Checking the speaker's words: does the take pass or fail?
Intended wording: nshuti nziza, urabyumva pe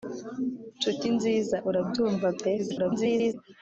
fail